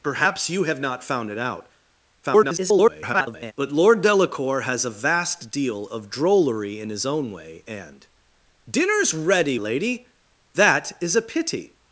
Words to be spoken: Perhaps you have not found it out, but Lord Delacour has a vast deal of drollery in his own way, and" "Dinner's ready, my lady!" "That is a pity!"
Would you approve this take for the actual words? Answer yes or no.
no